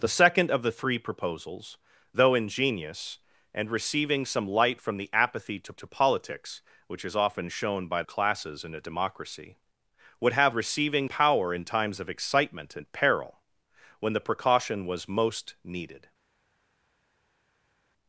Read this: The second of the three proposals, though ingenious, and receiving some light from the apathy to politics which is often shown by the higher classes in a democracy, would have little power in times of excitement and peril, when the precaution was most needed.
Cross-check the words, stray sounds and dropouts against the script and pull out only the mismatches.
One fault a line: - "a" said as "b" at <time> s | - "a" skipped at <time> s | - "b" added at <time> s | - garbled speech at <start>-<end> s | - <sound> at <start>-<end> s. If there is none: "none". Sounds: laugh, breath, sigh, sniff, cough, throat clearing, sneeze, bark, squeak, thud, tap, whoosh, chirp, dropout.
- "to" added at 5.7 s
- "the higher" skipped at 8.0 s
- "little" said as "receiving" at 10.5 s